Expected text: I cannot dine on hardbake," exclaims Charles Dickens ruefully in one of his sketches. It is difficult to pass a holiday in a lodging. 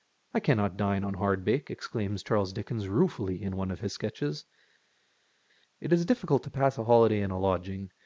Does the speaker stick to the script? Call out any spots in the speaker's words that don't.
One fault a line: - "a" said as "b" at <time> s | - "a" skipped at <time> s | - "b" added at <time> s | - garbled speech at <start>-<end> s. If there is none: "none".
none